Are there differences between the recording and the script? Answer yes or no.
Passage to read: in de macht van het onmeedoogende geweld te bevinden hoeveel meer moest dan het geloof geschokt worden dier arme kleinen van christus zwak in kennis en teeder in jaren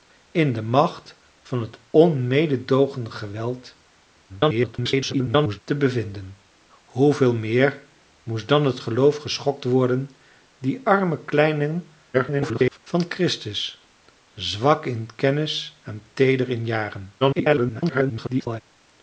yes